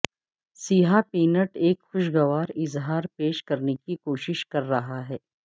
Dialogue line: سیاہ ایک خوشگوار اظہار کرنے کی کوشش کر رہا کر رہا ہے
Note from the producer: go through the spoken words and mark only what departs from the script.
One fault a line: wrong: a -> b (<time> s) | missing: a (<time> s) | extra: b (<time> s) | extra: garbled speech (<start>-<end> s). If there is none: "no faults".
extra: پینٹ (1.1 s)
extra: پیش (3.2 s)
missing: کر رہا (5.1 s)